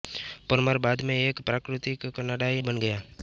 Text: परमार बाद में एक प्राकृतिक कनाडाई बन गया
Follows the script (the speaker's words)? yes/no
yes